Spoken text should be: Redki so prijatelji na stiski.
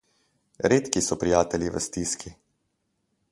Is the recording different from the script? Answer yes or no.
yes